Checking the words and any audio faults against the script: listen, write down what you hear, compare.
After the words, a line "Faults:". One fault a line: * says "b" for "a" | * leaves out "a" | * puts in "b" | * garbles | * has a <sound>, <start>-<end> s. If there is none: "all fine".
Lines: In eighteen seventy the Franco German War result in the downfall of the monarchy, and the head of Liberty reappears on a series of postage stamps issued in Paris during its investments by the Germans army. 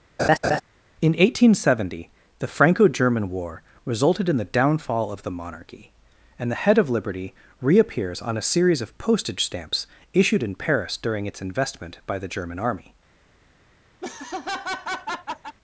In eighteen seventy the Franco German War resulted in the downfall of the monarchy, and the head of Liberty reappears on a series of postage stamps issued in Paris during its investment by the German army.
Faults:
* has a laugh, 0.2-0.6 s
* says "resulted" for "result"
* says "investment" for "investments"
* says "German" for "Germans"
* has a laugh, 14.0-15.6 s